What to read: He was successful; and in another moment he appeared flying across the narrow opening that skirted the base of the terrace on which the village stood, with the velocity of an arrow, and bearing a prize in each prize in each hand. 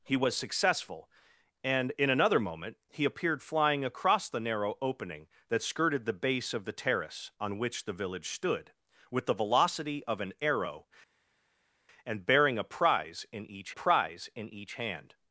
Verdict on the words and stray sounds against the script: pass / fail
pass